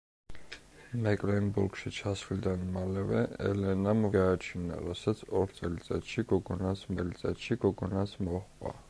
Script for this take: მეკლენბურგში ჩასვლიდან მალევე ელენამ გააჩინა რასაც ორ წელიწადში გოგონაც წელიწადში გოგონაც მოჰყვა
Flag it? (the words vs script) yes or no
no